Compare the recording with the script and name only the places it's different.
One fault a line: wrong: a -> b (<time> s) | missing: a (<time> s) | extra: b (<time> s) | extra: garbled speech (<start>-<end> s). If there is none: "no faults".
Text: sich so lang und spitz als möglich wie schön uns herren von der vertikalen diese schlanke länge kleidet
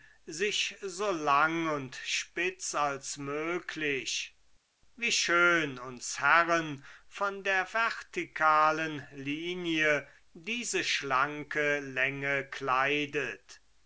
extra: linie (9.1 s)